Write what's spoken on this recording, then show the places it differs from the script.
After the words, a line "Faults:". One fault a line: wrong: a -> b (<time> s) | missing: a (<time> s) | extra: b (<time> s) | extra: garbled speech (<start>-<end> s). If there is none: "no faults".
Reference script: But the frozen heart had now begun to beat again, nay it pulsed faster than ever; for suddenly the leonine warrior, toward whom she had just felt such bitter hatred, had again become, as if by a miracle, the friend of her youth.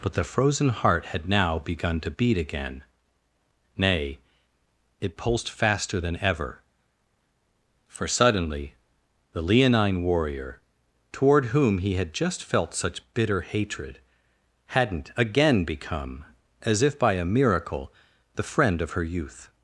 But the frozen heart had now begun to beat again, nay it pulsed faster than ever; for suddenly the leonine warrior, toward whom he had just felt such bitter hatred, hadn't again become, as if by a miracle, the friend of her youth.
Faults:
wrong: she -> he (11.8 s)
wrong: had -> hadn't (14.7 s)